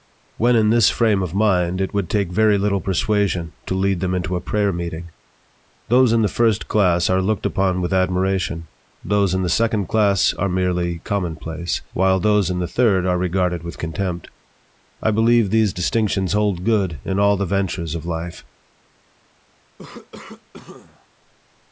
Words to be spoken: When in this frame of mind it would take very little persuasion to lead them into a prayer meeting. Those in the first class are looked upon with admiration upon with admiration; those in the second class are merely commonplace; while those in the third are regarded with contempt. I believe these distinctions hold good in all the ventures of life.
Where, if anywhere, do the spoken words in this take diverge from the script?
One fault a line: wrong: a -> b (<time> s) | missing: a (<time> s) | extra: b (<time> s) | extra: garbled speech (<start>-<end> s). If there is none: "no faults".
missing: upon with admiration (8.7 s)